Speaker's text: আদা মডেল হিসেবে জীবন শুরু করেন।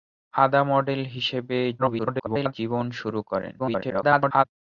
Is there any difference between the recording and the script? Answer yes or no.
yes